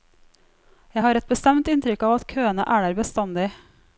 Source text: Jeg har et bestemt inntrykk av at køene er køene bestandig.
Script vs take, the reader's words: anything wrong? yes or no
yes